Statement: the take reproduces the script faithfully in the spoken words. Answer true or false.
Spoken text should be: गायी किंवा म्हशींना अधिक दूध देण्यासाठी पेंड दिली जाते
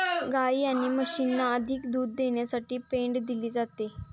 false